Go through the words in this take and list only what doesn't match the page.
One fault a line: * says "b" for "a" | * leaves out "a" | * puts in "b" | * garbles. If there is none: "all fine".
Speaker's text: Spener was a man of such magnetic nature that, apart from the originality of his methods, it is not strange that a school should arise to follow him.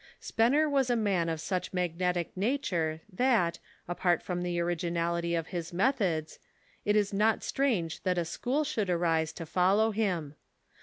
all fine